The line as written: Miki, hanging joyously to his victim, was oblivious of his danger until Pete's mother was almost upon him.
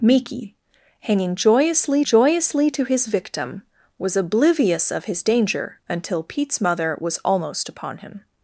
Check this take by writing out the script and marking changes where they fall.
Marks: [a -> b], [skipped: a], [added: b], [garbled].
Miki, hanging joyously [added: joyously] to his victim, was oblivious of his danger until Pete's mother was almost upon him.